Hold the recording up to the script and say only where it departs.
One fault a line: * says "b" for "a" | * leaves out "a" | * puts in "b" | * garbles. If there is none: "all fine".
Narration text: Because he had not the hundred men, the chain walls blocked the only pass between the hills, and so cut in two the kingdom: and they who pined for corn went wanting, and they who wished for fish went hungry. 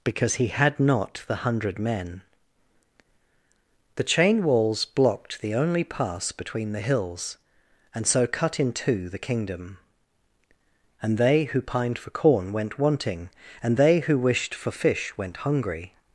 all fine